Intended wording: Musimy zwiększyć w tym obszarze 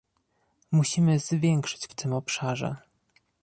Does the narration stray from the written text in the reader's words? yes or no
no